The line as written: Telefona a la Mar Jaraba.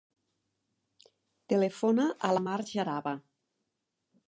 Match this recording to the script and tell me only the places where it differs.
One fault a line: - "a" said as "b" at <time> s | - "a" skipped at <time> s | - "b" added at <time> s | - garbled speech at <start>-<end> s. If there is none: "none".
none